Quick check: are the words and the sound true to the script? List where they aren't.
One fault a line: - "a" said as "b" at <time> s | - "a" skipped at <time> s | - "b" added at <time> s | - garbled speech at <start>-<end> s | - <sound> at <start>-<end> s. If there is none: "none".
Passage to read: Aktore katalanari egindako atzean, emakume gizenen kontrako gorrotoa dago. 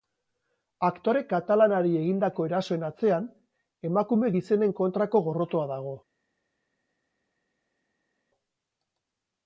- "erasoen" added at 2.5 s